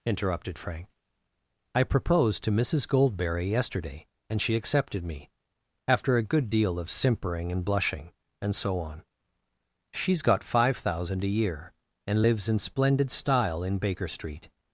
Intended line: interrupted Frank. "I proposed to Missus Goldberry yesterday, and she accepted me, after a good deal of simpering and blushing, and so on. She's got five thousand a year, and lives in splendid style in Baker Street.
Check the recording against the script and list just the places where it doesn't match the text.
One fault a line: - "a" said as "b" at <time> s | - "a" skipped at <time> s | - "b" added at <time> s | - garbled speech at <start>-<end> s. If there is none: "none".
none